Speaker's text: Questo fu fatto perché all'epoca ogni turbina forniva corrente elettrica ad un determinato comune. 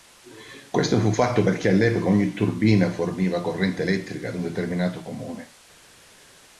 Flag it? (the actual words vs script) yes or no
no